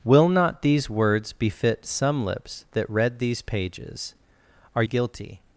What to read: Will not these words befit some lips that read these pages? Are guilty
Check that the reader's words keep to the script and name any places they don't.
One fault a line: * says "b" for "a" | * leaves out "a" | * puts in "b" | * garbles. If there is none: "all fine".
all fine